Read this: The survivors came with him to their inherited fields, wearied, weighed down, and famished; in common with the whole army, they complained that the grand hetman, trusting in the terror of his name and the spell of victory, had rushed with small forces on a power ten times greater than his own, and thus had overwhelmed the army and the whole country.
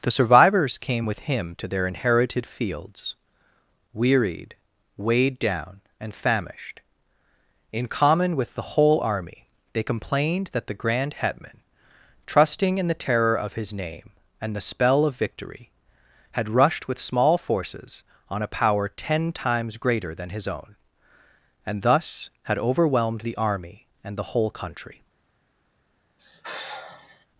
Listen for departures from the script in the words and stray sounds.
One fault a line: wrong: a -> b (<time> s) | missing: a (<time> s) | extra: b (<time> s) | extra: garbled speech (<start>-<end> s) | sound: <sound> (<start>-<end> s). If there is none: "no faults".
sound: sigh (26.2-27.3 s)